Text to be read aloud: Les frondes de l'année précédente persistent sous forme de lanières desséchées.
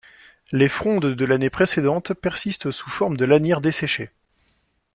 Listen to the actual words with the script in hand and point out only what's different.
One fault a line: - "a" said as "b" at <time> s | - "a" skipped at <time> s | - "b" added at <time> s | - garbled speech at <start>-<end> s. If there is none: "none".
none